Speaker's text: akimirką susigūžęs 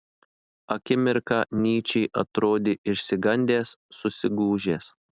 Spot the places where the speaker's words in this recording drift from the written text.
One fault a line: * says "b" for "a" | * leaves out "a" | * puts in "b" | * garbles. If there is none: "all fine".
* puts in "nyčė atrodė išsigandęs"